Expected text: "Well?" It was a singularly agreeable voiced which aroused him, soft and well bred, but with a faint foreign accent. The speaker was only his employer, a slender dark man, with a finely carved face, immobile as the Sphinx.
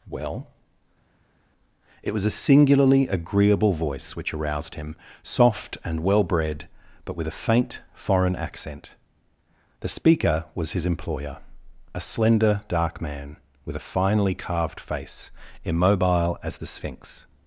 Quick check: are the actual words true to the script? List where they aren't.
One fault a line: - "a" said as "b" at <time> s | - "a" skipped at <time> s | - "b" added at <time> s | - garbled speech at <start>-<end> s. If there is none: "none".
- "voiced" said as "voice" at 3.7 s
- "only" skipped at 10.7 s